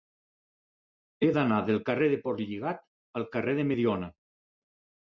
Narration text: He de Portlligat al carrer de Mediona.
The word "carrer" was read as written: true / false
true